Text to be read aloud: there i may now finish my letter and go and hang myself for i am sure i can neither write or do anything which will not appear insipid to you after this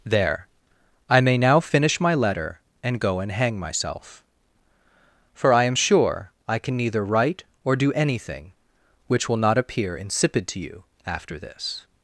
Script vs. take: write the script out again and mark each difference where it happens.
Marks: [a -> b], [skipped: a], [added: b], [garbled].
there i may now finish my letter and go and hang myself for i am sure i can neither write or do anything which will not appear insipid to you after this